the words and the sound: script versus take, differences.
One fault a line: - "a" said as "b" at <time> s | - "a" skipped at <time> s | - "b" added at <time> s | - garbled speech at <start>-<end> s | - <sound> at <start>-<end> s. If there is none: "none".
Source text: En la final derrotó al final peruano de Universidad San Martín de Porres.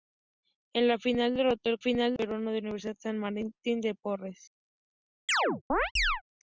- chirp at 5.3-6.2 s